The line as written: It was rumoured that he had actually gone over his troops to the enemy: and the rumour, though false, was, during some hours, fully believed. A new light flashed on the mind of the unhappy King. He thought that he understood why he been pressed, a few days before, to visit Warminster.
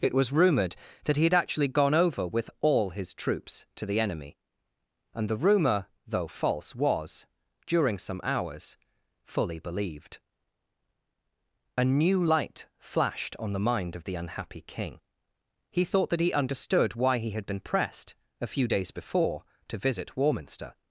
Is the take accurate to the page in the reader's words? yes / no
no